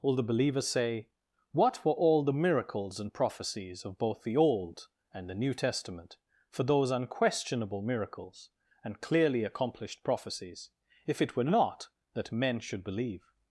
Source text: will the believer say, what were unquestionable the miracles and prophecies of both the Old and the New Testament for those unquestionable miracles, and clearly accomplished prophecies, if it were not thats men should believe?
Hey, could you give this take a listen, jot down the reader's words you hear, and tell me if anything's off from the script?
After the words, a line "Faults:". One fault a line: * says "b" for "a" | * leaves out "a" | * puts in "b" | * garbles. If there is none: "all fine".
will the believer say, what were all the miracles and prophecies of both the Old and the New Testament for those unquestionable miracles, and clearly accomplished prophecies, if it were not that men should believe?
Faults:
* says "all" for "unquestionable"
* says "that" for "thats"